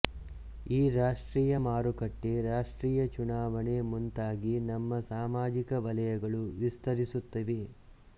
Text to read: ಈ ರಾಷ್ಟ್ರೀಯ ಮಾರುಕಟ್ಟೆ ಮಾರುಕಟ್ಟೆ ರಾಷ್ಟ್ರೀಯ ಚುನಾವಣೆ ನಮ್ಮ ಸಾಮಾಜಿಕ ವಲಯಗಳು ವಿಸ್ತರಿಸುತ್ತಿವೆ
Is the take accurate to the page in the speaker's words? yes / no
no